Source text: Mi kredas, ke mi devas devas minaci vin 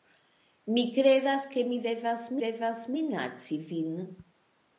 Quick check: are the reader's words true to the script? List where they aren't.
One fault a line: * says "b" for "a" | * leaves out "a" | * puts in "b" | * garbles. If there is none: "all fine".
all fine